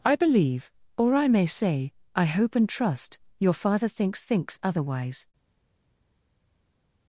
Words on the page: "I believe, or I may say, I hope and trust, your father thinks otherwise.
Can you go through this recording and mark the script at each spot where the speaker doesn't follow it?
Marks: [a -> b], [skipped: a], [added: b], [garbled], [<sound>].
"I believe, or I may say, I hope and trust, your father thinks [added: thinks] otherwise.